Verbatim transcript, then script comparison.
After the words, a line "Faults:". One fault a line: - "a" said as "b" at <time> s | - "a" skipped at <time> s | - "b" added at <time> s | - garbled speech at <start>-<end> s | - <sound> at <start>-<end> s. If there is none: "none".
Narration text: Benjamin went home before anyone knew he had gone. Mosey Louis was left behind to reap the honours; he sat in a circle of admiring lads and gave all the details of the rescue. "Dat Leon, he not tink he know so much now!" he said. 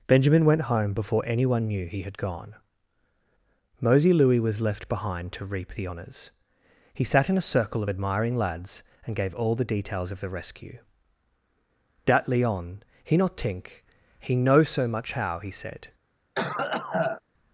Benjamin went home before anyone knew he had gone. Mosey Louis was left behind to reap the honours; he sat in a circle of admiring lads and gave all the details of the rescue. "Dat Leon, he not tink he know so much how!" he said.
Faults:
- "now" said as "how" at 15.1 s
- cough at 16.3-17.2 s